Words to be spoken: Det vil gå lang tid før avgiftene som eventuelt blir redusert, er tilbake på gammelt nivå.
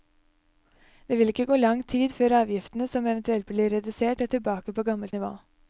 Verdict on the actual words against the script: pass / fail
fail